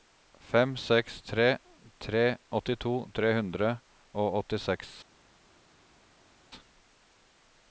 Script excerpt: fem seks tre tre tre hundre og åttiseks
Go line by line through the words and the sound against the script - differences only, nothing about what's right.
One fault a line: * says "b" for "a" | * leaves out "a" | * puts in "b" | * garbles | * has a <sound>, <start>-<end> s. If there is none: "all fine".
* puts in "åttito"